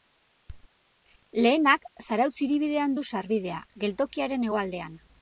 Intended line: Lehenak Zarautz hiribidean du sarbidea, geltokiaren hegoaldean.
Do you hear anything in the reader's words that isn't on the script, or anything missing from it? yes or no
no